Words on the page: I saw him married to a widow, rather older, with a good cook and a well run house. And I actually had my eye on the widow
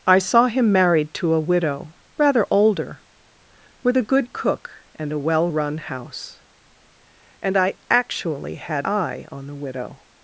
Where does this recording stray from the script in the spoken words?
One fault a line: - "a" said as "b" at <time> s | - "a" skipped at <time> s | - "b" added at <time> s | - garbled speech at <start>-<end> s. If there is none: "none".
- "my" skipped at 8.9 s